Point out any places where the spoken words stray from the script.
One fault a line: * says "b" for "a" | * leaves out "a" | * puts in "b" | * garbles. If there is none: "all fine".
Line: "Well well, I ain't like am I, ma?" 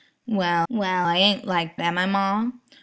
all fine